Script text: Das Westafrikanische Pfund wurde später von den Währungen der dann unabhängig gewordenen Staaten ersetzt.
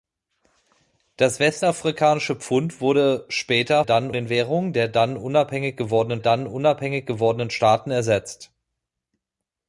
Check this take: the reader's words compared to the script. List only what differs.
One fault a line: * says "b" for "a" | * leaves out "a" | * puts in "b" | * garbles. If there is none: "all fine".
* says "dann" for "von"
* puts in "dann unabhängig gewordenen"